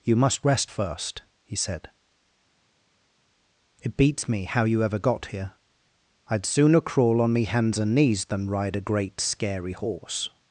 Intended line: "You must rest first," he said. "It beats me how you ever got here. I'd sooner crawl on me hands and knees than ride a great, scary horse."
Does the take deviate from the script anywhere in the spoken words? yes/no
no